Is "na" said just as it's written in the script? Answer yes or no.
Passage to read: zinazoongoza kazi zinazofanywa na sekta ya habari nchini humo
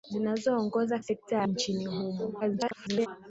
no